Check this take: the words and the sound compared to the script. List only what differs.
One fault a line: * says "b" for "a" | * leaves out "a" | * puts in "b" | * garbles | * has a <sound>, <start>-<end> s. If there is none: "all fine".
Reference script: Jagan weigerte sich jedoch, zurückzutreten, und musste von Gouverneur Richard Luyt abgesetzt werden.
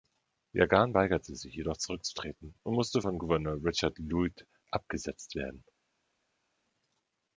all fine